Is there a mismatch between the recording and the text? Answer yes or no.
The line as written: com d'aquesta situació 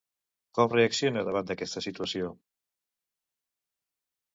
yes